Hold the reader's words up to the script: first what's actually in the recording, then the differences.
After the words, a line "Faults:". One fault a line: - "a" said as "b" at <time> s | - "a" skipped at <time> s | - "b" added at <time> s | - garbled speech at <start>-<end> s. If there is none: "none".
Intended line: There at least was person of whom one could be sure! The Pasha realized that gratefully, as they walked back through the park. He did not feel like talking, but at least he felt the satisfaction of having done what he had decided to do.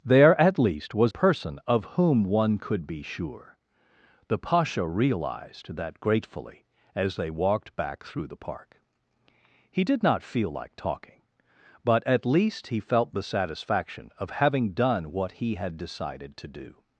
There at least was person of whom one could be sure! The Pasha realized that gratefully, as they walked back through the park. He did not feel like talking, but at least he felt the satisfaction of having done what he had decided to do.
Faults:
none